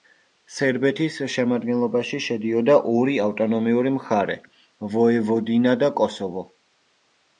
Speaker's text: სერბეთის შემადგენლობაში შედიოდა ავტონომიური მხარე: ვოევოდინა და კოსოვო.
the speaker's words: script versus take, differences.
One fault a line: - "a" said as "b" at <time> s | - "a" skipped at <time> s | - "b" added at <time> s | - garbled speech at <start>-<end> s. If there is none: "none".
- "ორი" added at 2.9 s